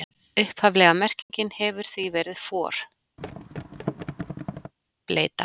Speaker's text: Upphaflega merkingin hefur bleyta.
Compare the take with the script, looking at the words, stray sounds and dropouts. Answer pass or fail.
fail